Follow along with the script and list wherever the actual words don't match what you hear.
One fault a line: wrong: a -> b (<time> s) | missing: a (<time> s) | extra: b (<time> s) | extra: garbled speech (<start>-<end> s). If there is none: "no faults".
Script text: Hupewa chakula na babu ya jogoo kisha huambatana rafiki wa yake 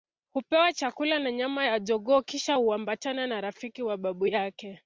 wrong: babu -> nyama (1.3 s)
extra: na (3.3 s)
extra: babu (4.0 s)